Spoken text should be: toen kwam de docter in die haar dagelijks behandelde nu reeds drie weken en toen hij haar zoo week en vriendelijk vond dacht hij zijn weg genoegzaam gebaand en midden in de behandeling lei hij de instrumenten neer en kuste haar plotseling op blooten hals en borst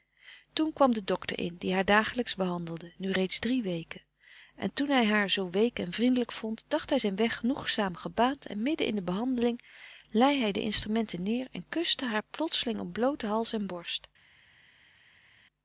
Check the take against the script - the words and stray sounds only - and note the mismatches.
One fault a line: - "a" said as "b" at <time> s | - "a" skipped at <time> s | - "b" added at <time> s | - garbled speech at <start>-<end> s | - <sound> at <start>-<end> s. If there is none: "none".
none